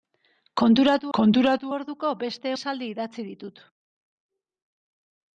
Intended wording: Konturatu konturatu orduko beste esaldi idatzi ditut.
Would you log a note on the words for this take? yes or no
no